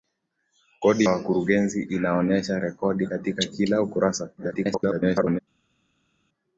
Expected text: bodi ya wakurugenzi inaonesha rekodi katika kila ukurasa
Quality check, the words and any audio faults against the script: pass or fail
fail